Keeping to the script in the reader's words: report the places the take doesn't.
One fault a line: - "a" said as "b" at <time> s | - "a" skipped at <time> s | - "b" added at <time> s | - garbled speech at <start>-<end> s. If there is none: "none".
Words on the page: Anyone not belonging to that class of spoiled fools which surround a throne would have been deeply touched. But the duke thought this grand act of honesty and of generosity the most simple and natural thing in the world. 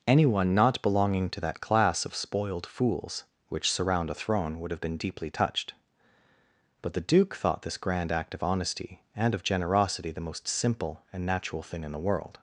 none